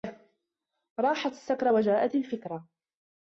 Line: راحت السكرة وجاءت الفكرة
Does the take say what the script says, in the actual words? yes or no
yes